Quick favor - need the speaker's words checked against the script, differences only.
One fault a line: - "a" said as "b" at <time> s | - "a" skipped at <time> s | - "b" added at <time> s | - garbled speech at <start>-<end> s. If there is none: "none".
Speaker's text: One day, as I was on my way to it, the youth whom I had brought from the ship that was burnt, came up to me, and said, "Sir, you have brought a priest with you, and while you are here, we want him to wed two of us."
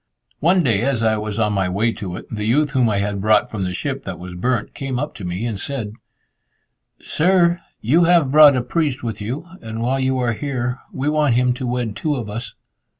none